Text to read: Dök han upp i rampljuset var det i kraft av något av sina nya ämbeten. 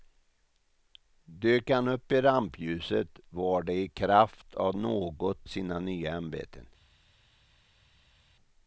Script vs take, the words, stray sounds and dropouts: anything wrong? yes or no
yes